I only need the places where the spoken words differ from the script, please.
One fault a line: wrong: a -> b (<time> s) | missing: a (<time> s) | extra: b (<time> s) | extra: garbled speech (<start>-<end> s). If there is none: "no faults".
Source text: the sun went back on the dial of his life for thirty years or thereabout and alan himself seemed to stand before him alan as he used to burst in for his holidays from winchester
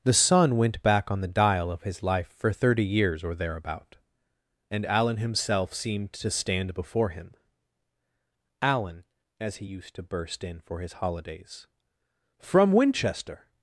no faults